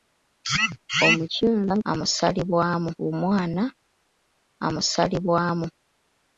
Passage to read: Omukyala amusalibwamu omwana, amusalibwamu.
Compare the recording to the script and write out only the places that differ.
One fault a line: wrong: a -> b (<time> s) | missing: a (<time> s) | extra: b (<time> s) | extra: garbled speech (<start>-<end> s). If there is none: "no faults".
no faults